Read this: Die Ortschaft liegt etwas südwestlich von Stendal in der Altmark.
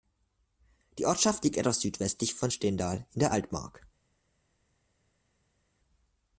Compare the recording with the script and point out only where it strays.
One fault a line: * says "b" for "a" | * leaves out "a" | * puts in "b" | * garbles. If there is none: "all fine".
all fine